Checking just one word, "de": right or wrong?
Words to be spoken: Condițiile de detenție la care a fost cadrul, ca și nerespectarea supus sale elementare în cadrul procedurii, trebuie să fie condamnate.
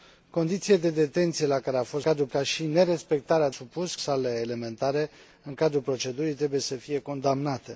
right